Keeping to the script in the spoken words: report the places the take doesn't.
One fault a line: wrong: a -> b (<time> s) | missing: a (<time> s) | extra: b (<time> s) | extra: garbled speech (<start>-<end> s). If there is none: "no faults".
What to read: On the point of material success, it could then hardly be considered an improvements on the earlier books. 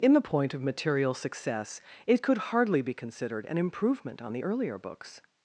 wrong: On -> In (0.0 s)
missing: then (2.4 s)
wrong: improvements -> improvement (3.6 s)